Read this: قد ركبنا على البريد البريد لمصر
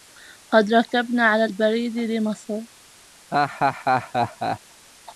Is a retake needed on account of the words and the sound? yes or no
yes